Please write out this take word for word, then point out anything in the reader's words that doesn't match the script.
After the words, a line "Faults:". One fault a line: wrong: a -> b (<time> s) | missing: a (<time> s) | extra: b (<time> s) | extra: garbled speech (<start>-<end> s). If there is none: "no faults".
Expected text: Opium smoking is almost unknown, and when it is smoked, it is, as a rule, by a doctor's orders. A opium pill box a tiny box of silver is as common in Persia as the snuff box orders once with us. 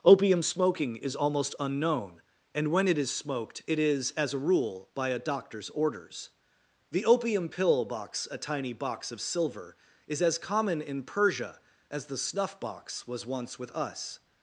Opium smoking is almost unknown, and when it is smoked, it is, as a rule, by a doctor's orders. The opium pill box a tiny box of silver is as common in Persia as the snuff box was once with us.
Faults:
wrong: A -> The (6.9 s)
wrong: orders -> was (13.1 s)